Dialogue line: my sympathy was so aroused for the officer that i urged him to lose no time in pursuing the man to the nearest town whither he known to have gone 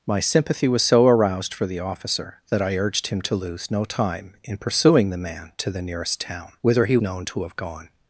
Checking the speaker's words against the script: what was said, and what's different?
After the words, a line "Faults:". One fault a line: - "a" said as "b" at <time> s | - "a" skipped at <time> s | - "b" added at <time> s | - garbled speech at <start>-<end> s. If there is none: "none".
my sympathy was so aroused for the officer that i urged him to lose no time in pursuing the man to the nearest town whither he known to have gone
Faults:
none